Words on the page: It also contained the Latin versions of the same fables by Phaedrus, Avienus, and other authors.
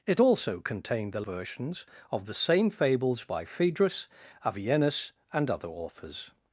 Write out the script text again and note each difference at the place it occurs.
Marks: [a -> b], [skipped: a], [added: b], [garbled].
It also contained the [skipped: Latin] versions of the same fables by Phaedrus, Avienus, and other authors.